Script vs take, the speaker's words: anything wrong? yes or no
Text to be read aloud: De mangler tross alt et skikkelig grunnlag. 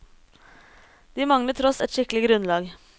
yes